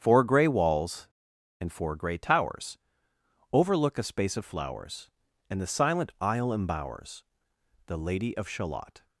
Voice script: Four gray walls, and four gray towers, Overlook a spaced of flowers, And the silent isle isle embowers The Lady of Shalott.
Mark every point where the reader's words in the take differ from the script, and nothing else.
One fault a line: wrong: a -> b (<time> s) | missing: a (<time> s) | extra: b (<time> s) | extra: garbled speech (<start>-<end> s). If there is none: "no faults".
wrong: spaced -> space (4.0 s)
missing: isle (6.5 s)